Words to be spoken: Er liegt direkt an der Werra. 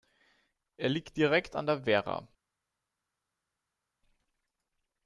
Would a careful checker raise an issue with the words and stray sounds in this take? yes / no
no